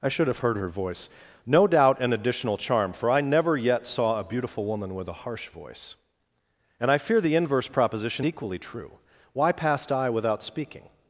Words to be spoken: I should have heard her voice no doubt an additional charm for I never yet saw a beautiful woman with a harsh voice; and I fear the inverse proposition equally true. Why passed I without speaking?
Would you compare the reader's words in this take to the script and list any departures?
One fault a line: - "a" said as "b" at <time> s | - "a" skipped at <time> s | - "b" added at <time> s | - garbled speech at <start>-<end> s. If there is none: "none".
none